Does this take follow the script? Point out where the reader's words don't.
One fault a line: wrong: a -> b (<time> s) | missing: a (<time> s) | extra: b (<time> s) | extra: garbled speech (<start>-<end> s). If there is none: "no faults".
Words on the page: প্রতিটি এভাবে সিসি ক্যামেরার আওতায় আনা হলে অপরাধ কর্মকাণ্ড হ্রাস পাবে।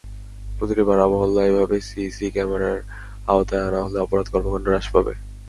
extra: পাড়া-মহল্লা (0.9 s)